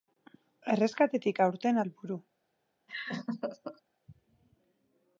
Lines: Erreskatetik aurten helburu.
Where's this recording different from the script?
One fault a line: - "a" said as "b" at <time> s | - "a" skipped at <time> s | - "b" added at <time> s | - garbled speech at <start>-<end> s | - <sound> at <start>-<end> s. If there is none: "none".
- laugh at 2.9-3.8 s